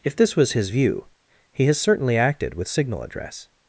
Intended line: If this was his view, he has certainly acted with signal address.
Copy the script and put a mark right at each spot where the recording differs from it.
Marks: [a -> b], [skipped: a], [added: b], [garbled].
If this was his view, he has certainly acted with signal address.